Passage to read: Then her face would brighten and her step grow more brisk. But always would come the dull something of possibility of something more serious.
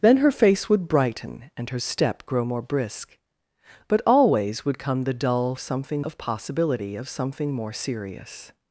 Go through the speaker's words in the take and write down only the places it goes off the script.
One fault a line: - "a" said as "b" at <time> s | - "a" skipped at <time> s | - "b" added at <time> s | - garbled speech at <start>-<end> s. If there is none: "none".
none